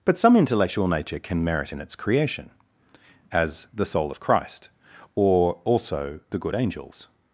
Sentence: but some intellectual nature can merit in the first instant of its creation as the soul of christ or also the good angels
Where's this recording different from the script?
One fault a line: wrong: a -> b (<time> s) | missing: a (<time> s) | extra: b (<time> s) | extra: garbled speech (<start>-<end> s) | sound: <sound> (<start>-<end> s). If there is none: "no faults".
missing: the first instant of (1.8 s)